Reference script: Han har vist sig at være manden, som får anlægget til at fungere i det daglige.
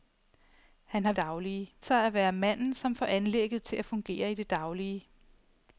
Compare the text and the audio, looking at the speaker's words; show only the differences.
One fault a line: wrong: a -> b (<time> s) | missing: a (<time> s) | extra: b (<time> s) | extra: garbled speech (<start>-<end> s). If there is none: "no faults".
wrong: vist -> daglige (1.2 s)